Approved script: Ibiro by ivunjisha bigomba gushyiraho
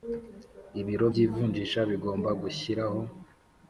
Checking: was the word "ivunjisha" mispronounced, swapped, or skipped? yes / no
no